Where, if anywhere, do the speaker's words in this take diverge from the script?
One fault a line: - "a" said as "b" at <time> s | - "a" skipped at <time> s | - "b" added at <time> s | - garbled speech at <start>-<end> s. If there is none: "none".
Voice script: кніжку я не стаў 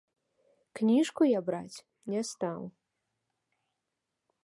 - "браць" added at 1.5 s